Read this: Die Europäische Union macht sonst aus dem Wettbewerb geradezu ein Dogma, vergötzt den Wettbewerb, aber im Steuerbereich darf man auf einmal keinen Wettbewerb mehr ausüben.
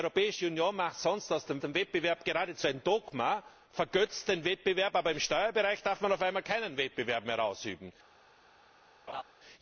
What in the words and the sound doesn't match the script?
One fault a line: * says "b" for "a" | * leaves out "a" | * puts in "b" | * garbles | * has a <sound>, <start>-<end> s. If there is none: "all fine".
* puts in "dem"
* has a laugh, 9.1-9.2 s